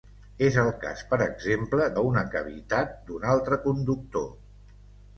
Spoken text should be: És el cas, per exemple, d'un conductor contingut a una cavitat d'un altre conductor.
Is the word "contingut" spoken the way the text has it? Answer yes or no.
no